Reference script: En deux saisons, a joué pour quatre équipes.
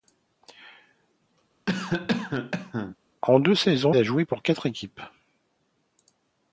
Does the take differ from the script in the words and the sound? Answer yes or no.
yes